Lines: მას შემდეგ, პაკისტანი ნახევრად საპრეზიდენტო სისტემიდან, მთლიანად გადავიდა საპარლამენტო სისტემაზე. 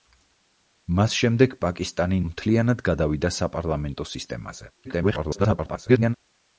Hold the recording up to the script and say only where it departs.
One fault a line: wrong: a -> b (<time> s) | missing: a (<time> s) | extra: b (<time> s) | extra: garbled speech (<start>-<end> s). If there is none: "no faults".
missing: ნახევრად საპრეზიდენტო სისტემიდან (2.2 s)
extra: garbled speech (4.8-6.1 s)